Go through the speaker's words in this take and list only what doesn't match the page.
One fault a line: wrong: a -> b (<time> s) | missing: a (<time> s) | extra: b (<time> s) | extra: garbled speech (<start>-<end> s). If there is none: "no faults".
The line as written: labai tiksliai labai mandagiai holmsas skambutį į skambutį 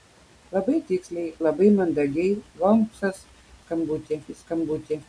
no faults